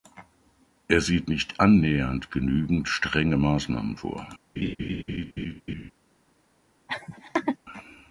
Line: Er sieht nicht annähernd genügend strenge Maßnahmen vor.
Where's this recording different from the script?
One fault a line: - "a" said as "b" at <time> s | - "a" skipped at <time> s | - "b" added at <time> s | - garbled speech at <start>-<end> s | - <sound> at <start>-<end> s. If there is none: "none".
- laugh at 4.6-5.9 s
- laugh at 6.9-7.6 s